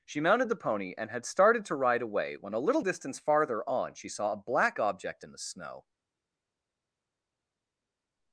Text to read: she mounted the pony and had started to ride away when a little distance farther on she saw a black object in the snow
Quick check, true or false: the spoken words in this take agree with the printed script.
true